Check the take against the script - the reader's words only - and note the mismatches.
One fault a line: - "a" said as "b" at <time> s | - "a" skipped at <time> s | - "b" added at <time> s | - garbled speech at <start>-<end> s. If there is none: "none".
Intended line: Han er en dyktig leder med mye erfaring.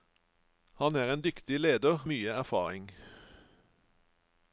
- "med" skipped at 2.1 s